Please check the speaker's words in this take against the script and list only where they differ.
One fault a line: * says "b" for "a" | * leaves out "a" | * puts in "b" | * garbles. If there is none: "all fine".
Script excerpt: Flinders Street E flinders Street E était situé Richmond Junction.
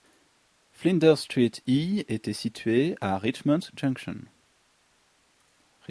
* leaves out "flinders Street E"
* puts in "à"